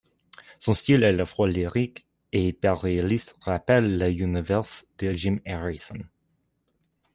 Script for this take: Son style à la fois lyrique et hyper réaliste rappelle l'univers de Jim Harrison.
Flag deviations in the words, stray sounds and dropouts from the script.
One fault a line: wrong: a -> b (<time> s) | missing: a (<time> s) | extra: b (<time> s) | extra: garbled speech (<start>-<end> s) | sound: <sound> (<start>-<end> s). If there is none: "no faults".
no faults